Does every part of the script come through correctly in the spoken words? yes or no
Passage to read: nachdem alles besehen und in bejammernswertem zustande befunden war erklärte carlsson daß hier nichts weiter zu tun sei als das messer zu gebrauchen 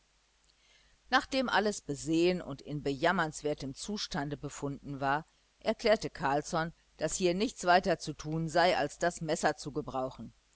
yes